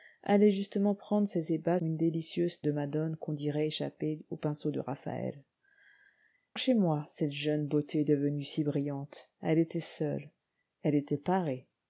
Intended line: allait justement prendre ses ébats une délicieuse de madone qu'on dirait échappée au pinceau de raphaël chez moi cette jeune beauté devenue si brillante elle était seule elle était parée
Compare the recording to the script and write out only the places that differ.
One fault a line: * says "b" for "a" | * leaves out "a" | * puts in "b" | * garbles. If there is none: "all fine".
all fine